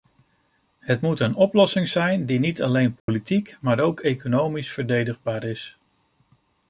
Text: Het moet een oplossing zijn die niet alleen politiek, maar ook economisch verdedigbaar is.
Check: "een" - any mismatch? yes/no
no